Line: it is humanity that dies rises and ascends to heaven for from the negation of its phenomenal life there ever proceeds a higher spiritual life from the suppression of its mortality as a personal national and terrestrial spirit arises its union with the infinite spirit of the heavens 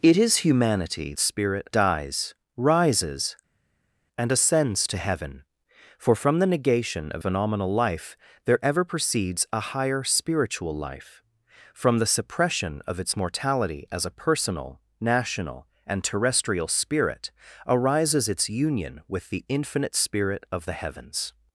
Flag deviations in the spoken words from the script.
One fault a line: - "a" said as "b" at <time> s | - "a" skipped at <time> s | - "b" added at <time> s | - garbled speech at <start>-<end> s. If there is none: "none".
- "that" said as "spirit" at 1.2 s
- "its" skipped at 7.2 s